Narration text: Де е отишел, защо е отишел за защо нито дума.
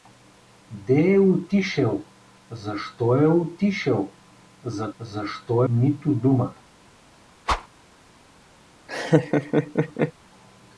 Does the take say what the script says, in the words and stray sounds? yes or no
no